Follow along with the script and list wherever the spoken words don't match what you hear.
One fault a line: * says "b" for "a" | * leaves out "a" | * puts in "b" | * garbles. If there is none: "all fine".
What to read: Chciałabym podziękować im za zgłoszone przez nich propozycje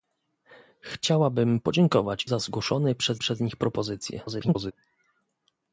* leaves out "im"
* puts in "przez"
* garbles